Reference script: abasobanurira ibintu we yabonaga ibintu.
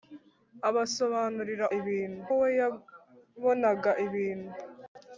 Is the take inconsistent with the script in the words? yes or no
no